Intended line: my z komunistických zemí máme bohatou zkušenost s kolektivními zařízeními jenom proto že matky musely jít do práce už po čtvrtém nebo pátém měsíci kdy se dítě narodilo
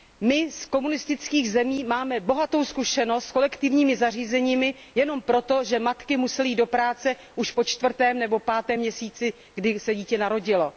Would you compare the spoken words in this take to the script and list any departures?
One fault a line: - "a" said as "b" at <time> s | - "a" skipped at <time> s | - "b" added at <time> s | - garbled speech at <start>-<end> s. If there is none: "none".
none